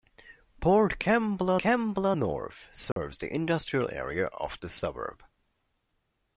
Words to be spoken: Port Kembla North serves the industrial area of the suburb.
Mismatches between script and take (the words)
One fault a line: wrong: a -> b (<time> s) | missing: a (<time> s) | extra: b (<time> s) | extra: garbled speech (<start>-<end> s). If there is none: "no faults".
extra: Kembla (1.6 s)